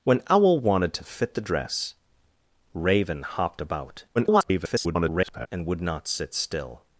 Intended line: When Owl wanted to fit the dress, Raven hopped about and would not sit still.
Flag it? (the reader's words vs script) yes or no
yes